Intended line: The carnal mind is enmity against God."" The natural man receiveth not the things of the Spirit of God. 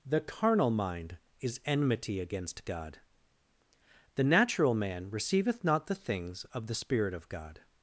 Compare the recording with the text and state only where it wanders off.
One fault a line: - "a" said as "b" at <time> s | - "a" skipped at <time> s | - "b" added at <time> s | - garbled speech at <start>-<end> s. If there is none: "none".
none